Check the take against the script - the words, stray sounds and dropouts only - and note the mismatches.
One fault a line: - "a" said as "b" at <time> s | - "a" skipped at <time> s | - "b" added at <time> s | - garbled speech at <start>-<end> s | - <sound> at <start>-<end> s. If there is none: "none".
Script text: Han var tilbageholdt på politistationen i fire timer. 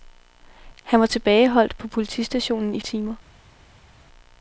- "fire" skipped at 2.8 s